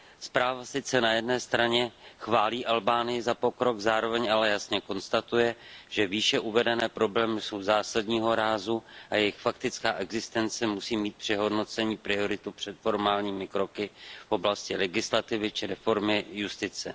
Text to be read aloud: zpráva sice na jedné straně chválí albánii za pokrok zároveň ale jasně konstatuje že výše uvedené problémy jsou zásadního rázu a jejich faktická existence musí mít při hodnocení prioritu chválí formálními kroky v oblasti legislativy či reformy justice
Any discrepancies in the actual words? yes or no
yes